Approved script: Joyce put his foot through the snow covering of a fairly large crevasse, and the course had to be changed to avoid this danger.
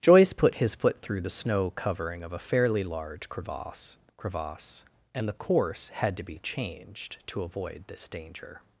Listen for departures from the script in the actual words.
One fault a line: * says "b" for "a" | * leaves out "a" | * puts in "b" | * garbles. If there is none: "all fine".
* puts in "crevasse"